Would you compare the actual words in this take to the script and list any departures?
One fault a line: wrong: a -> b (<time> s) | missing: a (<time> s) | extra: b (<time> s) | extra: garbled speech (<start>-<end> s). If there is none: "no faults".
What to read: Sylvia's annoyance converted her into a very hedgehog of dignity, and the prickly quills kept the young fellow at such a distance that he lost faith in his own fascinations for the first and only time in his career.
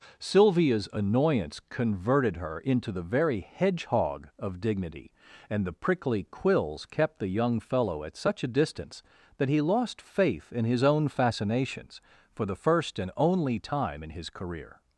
wrong: a -> the (2.9 s)